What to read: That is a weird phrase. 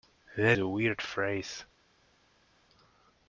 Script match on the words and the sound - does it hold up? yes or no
no